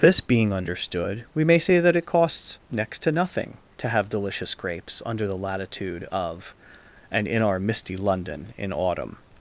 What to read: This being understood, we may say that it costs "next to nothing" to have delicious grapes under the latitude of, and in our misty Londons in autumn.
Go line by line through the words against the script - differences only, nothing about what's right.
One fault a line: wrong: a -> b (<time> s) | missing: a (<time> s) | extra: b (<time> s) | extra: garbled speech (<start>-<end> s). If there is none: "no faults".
wrong: Londons -> London (8.0 s)